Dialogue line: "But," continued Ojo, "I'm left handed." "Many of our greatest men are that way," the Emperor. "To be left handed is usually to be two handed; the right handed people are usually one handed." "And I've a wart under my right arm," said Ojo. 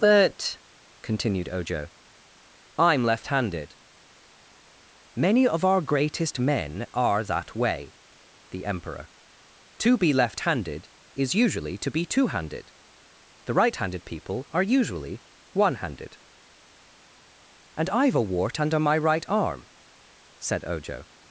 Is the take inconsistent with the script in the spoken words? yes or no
no